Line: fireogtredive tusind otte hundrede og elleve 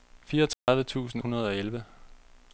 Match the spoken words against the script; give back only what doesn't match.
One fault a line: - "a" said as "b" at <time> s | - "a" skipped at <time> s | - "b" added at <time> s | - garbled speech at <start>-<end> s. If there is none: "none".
- "otte" skipped at 1.2 s